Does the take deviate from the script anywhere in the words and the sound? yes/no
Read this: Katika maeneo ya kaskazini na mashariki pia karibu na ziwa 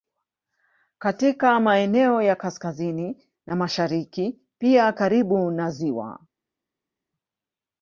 no